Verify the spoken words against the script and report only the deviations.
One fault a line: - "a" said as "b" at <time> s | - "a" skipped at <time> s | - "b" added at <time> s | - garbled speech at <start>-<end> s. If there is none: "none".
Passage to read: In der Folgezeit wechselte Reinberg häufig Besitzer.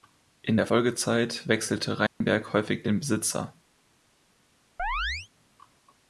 - "den" added at 2.8 s